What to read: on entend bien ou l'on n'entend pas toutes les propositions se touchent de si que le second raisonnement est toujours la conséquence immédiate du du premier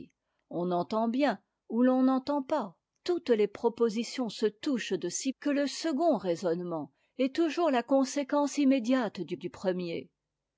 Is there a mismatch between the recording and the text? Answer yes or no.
no